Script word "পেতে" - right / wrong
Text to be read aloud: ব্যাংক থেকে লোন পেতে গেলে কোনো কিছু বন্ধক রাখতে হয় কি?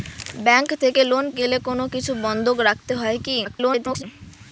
wrong